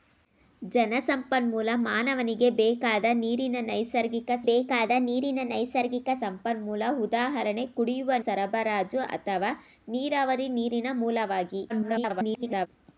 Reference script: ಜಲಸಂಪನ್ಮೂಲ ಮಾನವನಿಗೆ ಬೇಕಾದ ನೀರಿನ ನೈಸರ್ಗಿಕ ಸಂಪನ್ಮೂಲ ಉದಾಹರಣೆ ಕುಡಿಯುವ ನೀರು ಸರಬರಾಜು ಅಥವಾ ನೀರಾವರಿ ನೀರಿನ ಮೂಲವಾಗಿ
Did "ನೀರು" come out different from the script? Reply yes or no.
yes